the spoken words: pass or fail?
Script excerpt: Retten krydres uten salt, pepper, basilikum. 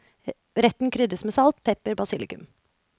fail